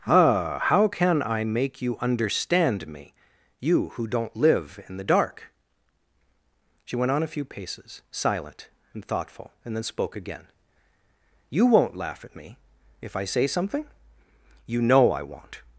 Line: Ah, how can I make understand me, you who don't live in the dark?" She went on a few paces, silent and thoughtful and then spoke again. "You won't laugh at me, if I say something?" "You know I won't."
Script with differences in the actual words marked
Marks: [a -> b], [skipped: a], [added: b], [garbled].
Ah, how can I make [added: you] understand me, you who don't live in the dark?" She went on a few paces, silent and thoughtful and then spoke again. "You won't laugh at me, if I say something?" "You know I won't."